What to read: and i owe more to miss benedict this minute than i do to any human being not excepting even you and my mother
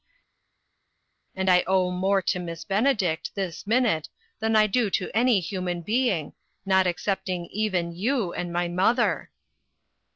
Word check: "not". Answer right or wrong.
right